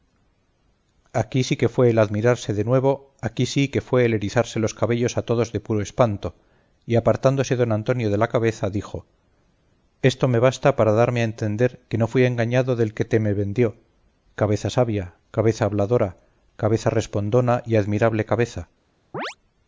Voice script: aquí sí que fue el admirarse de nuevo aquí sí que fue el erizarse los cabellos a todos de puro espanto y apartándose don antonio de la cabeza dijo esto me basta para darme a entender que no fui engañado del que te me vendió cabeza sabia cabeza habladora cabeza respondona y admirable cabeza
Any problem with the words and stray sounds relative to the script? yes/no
yes